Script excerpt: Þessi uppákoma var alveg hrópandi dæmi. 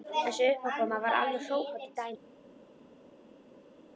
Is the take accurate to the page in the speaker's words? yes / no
yes